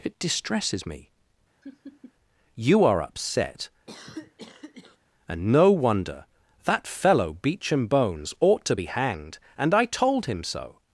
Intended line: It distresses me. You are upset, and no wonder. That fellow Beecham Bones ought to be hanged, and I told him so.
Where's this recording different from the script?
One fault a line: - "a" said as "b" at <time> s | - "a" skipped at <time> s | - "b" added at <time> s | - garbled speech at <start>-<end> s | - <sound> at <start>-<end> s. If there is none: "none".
- laugh at 1.6-2.1 s
- cough at 3.9-5.0 s